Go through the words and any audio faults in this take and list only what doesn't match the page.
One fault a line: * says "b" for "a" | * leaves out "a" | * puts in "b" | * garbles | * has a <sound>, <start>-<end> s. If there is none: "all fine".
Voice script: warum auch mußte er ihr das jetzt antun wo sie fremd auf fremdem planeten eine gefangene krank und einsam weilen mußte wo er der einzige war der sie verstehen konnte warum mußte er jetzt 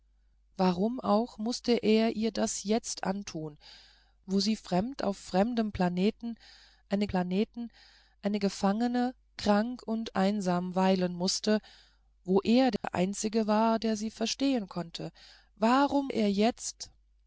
* puts in "planeten eine"
* has a dropout, 12.8-12.8 s
* leaves out "mußte"